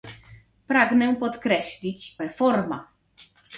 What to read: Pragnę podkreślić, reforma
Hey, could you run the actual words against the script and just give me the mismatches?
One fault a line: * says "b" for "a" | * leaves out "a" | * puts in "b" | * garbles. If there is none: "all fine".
all fine